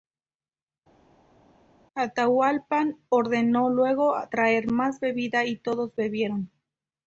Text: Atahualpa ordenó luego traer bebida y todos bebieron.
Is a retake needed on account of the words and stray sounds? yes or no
yes